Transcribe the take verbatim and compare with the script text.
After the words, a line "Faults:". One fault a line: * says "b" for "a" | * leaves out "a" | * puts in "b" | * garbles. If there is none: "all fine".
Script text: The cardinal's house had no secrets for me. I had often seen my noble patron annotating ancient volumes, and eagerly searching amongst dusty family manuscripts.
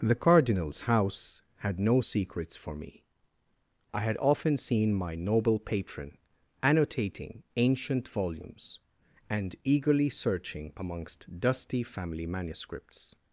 The cardinal's house had no secrets for me. I had often seen my noble patron annotating ancient volumes, and eagerly searching amongst dusty family manuscripts.
Faults:
all fine